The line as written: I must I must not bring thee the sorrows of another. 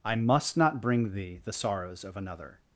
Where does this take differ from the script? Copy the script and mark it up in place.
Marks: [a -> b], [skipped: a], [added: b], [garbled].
I must [skipped: I must] not bring thee the sorrows of another.